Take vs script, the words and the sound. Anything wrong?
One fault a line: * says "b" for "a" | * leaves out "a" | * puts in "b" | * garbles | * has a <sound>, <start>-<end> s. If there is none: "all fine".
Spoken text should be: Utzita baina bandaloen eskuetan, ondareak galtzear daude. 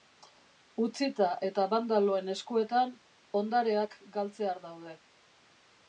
* says "eta" for "baina"